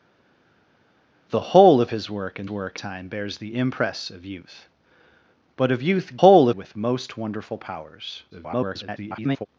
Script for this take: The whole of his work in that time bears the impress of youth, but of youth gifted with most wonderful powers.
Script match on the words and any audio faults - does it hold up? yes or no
no